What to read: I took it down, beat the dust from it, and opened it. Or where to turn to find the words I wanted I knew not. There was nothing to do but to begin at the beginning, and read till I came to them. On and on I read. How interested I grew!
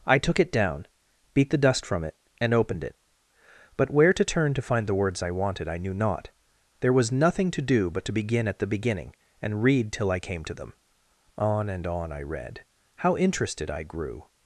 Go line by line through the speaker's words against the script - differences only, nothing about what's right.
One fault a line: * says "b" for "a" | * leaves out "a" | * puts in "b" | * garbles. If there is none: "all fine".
* says "But" for "Or"